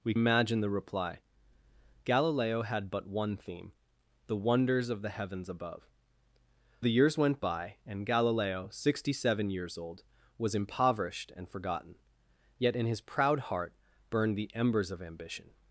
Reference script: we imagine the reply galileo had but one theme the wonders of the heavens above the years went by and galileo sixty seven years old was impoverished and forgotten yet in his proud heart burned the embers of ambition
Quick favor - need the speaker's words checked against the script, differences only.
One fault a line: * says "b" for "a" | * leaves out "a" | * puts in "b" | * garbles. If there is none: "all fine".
all fine